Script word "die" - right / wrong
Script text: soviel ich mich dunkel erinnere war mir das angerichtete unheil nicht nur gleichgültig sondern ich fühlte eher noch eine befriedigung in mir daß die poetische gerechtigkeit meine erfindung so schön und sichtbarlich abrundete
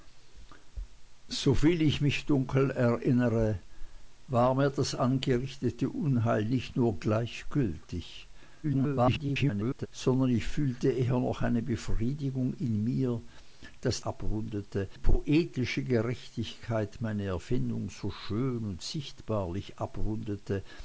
wrong